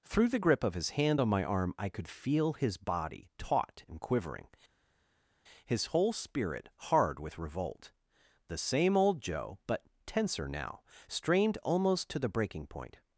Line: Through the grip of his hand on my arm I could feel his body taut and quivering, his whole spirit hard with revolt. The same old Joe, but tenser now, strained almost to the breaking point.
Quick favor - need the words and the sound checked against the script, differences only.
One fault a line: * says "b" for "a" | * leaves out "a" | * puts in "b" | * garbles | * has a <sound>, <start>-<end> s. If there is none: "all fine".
all fine